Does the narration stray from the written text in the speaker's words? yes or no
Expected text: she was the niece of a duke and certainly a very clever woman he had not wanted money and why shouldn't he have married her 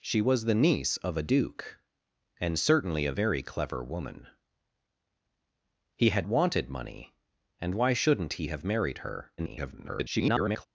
yes